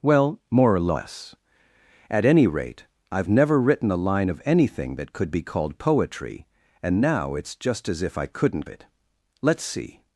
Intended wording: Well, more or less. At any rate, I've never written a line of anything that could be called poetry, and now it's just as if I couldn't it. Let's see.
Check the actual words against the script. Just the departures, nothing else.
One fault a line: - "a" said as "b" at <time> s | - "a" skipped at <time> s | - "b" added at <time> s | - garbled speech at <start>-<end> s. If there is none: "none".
none